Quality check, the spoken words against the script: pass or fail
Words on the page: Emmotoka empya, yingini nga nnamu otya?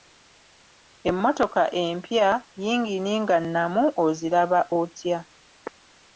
fail